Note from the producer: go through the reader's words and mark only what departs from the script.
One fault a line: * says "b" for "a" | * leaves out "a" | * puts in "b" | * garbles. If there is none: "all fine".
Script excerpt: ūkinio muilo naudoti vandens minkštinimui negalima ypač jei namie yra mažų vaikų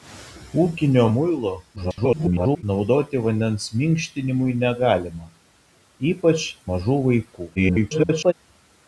* garbles
* leaves out "jei namie yra"
* garbles